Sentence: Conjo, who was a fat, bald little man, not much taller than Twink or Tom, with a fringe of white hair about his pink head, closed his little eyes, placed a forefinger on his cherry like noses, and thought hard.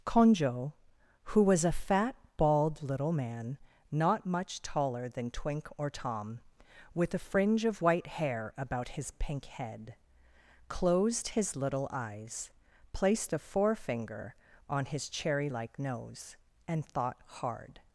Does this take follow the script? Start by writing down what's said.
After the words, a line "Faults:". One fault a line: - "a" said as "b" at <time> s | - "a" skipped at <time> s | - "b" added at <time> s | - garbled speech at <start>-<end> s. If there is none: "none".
Conjo, who was a fat, bald little man, not much taller than Twink or Tom, with a fringe of white hair about his pink head, closed his little eyes, placed a forefinger on his cherry like nose, and thought hard.
Faults:
- "noses" said as "nose" at 15.8 s